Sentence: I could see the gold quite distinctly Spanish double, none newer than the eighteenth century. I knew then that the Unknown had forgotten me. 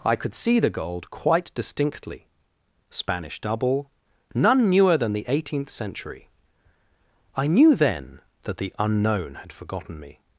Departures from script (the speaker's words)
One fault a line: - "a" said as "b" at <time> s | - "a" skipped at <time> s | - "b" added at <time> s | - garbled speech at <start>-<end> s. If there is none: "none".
none